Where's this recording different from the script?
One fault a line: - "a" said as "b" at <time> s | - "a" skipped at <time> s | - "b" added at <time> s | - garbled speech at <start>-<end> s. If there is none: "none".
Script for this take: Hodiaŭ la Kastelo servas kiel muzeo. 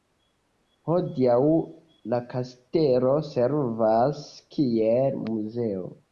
none